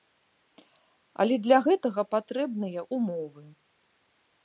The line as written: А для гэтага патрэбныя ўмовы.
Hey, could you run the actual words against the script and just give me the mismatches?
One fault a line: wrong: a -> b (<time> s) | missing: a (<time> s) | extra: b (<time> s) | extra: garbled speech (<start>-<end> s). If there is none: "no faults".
wrong: А -> Але (1.2 s)